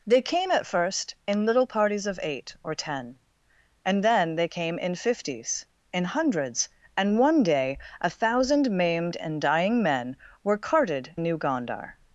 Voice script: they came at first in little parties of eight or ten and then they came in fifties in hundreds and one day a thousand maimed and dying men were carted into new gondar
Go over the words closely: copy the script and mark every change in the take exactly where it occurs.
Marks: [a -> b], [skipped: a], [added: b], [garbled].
they came at first in little parties of eight or ten and then they came in fifties in hundreds and one day a thousand maimed and dying men were carted [skipped: into] new gondar